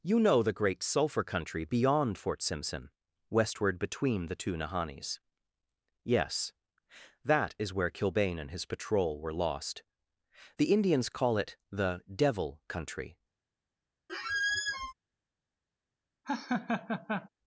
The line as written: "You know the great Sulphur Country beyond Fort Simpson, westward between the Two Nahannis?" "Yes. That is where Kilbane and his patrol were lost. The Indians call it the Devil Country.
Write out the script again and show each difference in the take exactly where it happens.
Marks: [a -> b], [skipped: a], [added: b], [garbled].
"You know the great Sulphur Country beyond Fort Simpson, westward between the Two Nahannis?" "Yes. That is where Kilbane and his patrol were lost. The Indians call it the Devil Country.